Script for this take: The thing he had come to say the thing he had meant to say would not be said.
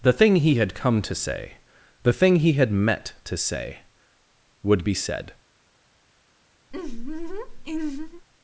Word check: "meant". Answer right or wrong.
wrong